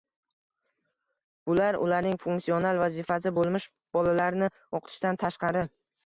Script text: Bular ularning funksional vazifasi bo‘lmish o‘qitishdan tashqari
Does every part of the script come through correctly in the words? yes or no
no